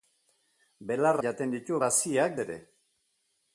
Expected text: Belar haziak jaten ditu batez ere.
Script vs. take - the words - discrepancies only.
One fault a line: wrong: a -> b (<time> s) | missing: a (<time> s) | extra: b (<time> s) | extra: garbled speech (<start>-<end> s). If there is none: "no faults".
missing: haziak (1.2 s)
wrong: batez -> haziak (1.9 s)